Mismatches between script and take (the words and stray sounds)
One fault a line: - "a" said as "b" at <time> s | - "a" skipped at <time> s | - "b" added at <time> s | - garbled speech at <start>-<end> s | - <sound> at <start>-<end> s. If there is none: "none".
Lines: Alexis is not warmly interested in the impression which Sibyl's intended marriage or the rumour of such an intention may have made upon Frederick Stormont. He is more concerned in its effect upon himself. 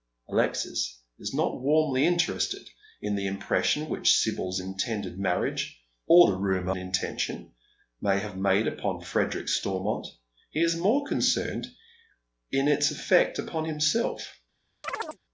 - "of such an" skipped at 6.7 s
- chirp at 14.8-15.2 s